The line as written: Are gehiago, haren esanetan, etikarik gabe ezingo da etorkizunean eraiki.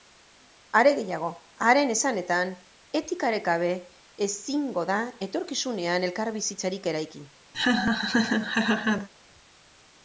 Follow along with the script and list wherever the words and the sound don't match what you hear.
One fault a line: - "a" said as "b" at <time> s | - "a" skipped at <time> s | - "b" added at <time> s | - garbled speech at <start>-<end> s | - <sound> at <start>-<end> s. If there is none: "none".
- "elkarbizitzarik" added at 6.1 s
- laugh at 7.5-9.1 s